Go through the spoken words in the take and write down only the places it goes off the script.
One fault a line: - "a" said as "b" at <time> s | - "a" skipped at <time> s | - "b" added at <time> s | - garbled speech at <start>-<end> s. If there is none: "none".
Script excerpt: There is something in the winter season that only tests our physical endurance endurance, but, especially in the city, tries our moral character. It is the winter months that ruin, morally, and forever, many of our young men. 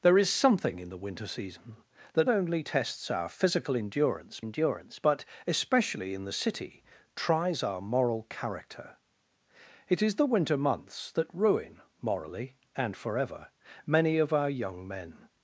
none